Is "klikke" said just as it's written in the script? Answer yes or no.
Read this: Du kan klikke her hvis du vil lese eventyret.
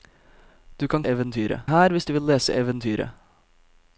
no